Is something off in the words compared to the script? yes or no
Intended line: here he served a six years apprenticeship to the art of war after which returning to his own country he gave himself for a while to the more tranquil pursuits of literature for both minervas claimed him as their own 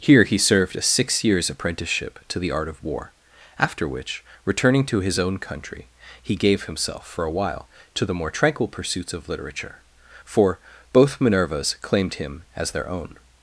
no